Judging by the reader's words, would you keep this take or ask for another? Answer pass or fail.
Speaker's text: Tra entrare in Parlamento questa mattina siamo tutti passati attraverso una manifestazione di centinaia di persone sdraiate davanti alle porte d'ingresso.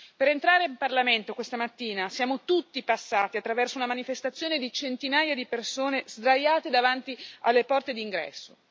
fail